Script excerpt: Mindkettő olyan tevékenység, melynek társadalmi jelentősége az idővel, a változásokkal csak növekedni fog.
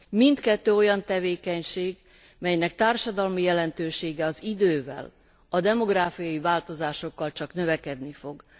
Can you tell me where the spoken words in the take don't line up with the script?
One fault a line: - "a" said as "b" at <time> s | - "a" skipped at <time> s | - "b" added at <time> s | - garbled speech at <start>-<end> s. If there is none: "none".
- "demográfiai" added at 5.6 s